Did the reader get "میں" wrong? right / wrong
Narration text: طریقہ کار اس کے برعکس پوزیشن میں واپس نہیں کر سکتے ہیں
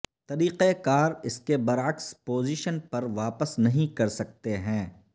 wrong